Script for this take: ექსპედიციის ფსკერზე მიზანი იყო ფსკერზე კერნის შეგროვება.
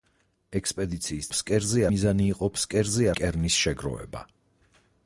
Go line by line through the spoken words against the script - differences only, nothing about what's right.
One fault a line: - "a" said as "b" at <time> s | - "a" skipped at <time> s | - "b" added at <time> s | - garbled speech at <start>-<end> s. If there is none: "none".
none